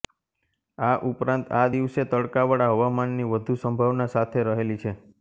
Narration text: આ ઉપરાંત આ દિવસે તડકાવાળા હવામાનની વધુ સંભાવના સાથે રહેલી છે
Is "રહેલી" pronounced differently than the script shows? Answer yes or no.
no